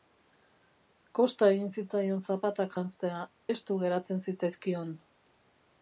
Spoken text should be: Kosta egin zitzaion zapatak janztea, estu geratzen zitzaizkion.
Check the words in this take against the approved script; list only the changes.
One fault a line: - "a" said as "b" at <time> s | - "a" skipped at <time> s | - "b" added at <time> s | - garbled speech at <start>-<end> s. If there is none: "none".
none